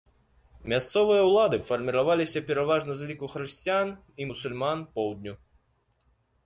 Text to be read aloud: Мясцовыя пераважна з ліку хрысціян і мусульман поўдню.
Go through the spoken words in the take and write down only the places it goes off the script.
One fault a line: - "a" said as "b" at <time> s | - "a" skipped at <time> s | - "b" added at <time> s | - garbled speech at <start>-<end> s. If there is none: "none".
- "ўлады фарміраваліся" added at 1.3 s